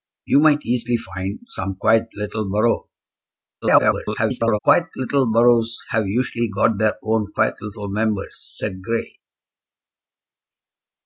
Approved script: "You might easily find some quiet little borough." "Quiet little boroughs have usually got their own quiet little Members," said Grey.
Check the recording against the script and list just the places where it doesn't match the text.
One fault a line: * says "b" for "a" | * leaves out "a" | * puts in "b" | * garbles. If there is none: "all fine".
* garbles